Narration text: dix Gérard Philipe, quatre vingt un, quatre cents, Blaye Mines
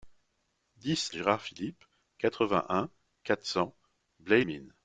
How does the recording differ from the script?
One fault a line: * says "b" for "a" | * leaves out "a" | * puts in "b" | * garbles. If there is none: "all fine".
all fine